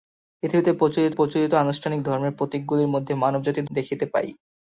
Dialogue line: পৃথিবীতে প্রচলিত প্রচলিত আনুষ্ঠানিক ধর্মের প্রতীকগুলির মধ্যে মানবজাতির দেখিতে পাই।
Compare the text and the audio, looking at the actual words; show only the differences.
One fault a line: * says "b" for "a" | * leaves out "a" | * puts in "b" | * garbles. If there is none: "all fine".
all fine